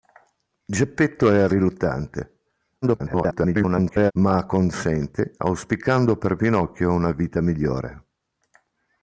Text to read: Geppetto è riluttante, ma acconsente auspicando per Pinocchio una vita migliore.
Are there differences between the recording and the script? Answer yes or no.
yes